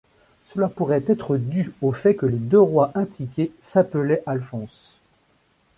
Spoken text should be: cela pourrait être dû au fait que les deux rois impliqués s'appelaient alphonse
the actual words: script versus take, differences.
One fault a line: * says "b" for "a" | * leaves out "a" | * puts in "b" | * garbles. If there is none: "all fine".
all fine